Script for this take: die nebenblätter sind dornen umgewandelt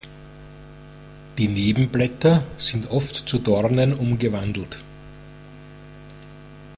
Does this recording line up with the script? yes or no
no